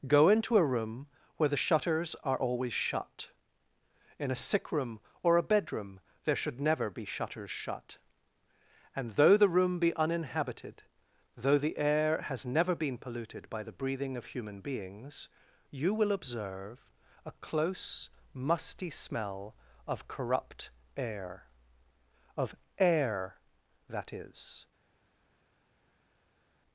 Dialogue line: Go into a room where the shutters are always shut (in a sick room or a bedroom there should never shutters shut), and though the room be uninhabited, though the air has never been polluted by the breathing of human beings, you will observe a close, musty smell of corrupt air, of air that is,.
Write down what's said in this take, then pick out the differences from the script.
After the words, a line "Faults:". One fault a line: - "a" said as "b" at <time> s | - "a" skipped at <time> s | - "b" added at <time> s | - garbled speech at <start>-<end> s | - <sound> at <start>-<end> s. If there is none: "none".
Go into a room where the shutters are always shut (in a sick room or a bedroom there should never be shutters shut), and though the room be uninhabited, though the air has never been polluted by the breathing of human beings, you will observe a close, musty smell of corrupt air, of air that is,.
Faults:
- "be" added at 6.9 s